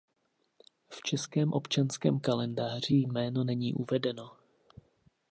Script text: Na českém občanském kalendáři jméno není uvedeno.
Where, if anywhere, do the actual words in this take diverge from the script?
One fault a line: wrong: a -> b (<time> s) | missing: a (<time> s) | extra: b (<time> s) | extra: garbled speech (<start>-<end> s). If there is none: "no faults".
wrong: Na -> V (0.9 s)